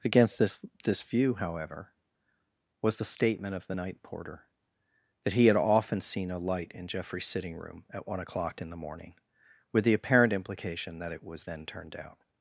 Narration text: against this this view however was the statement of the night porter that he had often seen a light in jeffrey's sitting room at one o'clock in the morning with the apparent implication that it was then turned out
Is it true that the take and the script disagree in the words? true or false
false